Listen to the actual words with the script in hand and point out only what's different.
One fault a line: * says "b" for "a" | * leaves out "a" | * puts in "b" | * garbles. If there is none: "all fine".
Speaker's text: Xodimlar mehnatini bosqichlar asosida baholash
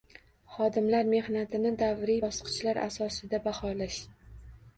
* puts in "davriy"